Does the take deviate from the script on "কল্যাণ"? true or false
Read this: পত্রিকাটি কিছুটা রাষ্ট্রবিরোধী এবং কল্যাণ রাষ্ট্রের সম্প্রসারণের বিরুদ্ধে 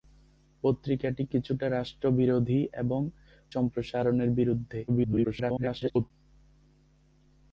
true